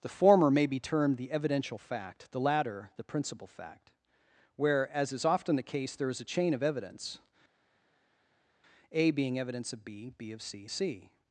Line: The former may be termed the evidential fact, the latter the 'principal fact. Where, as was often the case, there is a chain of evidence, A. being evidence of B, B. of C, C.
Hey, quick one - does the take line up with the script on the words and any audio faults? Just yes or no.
no